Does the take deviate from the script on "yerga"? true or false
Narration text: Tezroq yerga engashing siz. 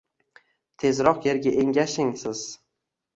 false